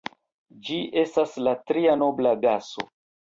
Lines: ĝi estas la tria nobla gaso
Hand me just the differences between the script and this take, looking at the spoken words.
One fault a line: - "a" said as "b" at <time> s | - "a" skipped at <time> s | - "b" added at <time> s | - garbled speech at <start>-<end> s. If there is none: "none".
none